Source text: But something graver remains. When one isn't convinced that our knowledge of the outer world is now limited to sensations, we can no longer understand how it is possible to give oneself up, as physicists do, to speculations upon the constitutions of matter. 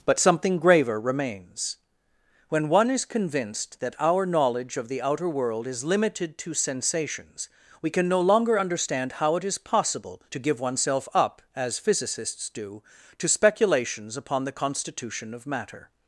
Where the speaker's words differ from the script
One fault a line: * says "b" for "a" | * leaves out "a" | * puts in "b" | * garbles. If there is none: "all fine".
* says "is" for "isn't"
* leaves out "now"
* says "constitution" for "constitutions"